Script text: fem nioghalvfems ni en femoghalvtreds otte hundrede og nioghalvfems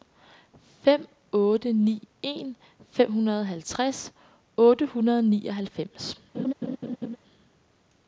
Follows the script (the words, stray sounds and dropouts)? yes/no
no